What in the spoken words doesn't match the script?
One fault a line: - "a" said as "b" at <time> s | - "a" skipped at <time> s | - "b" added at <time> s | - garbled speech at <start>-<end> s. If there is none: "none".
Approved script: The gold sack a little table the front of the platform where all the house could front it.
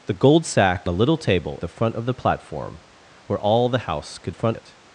none